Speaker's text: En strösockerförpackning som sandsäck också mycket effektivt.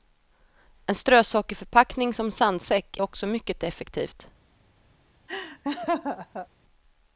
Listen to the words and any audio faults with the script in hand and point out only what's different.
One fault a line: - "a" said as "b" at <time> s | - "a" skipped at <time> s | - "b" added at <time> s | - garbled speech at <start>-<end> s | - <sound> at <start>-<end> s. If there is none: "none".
- laugh at 5.3-6.5 s